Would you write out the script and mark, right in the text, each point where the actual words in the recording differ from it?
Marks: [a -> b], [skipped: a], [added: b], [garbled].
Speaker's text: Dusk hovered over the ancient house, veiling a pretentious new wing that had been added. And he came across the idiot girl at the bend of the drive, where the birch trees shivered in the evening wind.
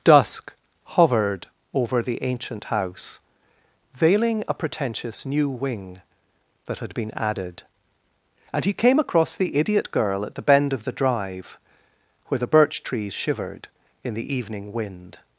Dusk hovered over the ancient house, veiling a pretentious new wing that had been added. And he came across the idiot girl at the bend of the drive, where the birch trees shivered in the evening wind.